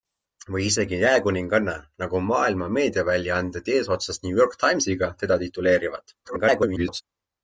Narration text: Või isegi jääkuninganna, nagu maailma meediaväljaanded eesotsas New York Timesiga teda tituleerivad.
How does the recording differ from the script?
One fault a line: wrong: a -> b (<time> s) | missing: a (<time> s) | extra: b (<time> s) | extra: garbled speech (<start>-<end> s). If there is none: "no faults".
extra: garbled speech (6.2-7.0 s)